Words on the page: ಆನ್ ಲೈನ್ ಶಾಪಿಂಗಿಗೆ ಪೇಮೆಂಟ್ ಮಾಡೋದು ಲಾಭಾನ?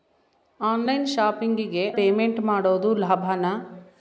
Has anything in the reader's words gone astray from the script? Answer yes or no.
no